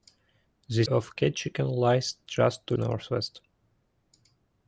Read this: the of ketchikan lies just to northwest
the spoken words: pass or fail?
pass